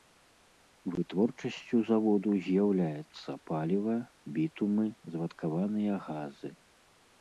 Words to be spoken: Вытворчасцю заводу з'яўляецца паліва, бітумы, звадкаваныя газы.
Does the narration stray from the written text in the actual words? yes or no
no